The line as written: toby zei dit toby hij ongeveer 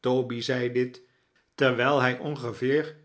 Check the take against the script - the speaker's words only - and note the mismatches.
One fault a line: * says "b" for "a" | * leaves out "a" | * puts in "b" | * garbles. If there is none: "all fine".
* says "terwijl" for "toby"